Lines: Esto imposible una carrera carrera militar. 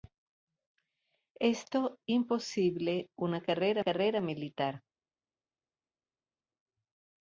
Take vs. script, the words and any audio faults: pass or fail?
pass